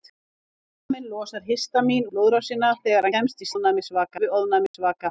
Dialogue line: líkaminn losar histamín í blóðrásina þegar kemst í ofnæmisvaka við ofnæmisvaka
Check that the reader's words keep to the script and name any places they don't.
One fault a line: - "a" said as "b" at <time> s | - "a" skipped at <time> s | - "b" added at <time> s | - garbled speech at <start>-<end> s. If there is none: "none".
none